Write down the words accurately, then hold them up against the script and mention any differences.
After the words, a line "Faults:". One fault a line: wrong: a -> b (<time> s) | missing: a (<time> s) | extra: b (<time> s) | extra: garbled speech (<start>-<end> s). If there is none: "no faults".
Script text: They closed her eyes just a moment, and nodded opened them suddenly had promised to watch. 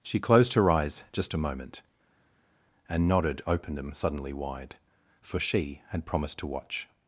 She closed her eyes just a moment, and nodded opened them suddenly wide, for she had promised to watch.
Faults:
wrong: They -> She (0.0 s)
extra: wide for she (4.3 s)